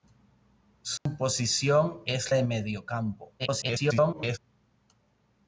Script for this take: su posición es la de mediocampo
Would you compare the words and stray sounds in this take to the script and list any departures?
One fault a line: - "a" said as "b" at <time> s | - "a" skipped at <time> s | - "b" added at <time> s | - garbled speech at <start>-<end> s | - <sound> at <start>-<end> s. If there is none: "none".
- dropout at 1.0-1.1 s
- "la" skipped at 2.3 s
- garbled speech at 3.4-4.4 s